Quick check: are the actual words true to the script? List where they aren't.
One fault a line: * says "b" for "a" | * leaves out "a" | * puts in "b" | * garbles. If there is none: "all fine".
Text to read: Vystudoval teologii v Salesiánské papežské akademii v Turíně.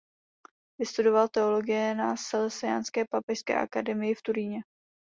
* says "na" for "v"